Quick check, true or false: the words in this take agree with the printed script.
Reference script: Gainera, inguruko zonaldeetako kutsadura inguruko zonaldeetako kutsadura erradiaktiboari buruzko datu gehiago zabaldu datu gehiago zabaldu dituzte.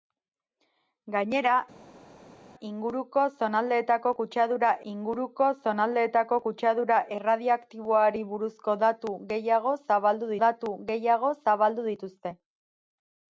true